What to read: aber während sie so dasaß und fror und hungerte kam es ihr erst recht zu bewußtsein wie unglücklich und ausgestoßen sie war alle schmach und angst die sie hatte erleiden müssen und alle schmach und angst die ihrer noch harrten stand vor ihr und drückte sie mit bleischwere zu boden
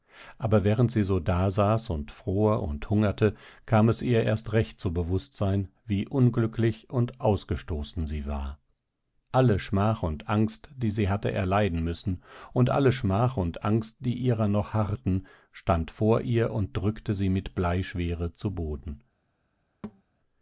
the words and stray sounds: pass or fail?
fail